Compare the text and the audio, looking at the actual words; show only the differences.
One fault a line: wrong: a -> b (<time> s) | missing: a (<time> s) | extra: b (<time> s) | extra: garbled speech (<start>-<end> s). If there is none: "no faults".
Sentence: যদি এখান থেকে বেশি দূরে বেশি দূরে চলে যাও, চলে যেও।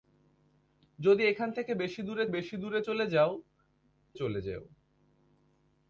no faults